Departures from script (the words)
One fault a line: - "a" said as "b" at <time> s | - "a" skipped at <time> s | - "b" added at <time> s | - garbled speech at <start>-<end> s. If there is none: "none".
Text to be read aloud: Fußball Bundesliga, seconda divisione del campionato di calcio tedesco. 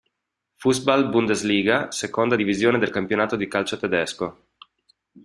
none